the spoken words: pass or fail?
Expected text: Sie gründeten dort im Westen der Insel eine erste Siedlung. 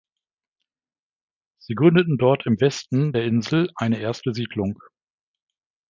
pass